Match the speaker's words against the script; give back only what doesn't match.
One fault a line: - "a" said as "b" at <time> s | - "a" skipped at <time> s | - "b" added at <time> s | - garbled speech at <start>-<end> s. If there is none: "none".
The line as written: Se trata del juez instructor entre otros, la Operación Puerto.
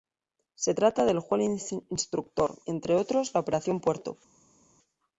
none